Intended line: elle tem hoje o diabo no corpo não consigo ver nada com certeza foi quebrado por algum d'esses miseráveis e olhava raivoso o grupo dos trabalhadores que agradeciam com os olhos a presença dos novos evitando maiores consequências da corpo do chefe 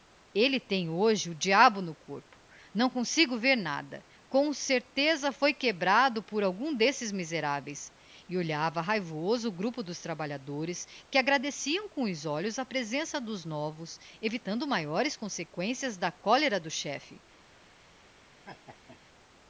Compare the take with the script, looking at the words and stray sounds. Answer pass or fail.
fail